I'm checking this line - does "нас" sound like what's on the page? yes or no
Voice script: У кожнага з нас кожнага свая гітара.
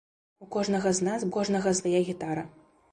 yes